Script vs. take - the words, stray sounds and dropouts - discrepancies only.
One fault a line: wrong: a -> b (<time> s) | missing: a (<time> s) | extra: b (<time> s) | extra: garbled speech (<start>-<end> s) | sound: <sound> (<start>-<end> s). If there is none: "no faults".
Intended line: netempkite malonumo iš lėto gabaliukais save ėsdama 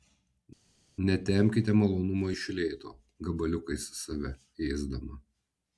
no faults